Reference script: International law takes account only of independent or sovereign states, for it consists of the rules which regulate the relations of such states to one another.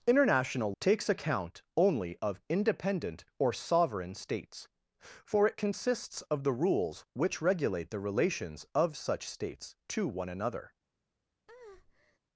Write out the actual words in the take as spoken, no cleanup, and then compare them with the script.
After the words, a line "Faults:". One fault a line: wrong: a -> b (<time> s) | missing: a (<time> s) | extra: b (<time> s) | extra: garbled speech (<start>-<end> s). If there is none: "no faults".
International takes account only of independent or sovereign states, for it consists of the rules which regulate the relations of such states to one another.
Faults:
missing: law (0.7 s)